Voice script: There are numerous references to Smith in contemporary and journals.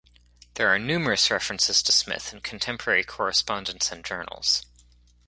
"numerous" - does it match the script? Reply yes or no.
yes